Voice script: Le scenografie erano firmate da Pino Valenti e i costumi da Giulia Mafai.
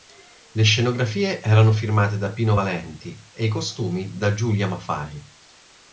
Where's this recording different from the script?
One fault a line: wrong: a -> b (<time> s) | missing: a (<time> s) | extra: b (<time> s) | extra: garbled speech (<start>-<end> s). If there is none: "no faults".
no faults